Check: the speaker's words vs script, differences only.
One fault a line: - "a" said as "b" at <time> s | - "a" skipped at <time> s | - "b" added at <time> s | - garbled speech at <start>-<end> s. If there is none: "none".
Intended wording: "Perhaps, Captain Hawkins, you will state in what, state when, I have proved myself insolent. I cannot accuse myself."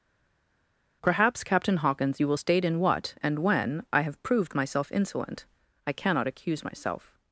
- "state" said as "and" at 3.2 s